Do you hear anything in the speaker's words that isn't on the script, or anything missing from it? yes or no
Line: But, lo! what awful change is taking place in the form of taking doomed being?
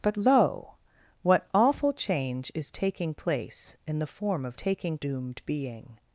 no